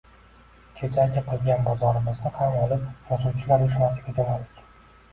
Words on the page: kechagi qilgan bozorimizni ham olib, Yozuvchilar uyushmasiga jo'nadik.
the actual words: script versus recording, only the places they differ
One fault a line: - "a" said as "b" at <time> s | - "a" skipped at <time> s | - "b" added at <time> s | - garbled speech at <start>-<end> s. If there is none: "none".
none